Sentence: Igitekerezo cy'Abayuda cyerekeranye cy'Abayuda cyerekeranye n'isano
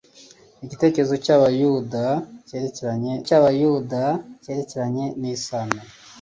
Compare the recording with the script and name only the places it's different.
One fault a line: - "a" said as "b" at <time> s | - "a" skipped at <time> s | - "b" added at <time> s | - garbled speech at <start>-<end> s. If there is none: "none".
none